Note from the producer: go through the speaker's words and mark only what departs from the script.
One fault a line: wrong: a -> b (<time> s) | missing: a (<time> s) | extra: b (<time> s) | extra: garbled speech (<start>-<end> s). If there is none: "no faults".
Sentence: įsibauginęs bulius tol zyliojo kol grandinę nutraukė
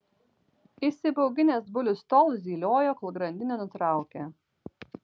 no faults